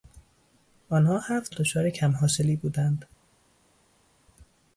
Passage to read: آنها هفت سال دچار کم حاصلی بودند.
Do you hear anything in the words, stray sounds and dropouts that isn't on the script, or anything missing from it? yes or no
yes